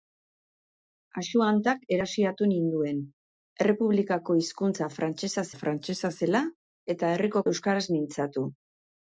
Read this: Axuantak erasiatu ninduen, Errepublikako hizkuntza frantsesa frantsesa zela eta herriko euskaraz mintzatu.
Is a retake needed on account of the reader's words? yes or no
no